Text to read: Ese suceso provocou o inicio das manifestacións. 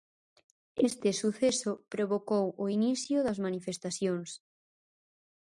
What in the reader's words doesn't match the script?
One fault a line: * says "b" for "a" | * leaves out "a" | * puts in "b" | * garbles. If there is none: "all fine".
* says "Este" for "Ese"